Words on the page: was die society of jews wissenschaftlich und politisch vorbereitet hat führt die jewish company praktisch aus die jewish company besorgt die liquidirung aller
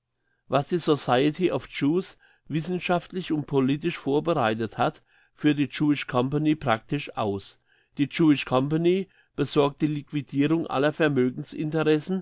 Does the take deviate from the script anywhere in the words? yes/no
no